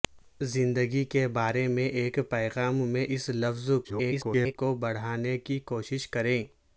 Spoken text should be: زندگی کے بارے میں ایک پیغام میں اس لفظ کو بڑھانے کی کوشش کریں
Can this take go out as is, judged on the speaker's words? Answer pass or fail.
fail